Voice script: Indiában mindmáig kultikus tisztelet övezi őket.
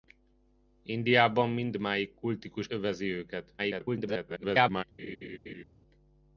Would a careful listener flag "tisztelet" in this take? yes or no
yes